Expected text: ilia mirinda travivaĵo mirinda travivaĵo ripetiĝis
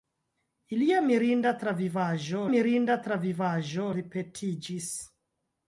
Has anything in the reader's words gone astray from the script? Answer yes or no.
no